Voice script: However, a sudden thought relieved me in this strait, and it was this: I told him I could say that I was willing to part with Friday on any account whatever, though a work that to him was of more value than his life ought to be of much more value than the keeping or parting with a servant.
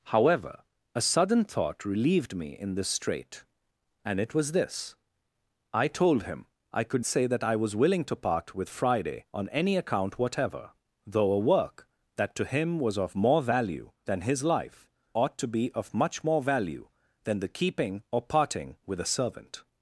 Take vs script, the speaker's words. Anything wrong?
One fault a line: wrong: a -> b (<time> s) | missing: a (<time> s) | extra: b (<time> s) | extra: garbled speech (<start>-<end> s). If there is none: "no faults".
no faults